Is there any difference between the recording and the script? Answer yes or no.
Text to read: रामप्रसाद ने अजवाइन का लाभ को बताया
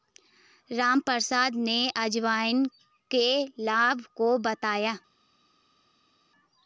yes